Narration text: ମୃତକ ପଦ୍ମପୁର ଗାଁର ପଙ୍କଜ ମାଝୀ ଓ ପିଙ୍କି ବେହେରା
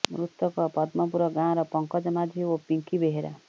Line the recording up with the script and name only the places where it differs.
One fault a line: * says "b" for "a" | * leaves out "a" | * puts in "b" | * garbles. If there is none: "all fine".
all fine